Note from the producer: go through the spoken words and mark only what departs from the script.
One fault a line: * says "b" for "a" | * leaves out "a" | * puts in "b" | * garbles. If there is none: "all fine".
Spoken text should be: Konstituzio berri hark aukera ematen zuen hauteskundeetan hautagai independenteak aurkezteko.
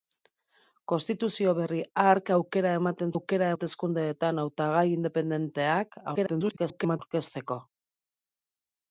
* says "aukera" for "zuen"
* garbles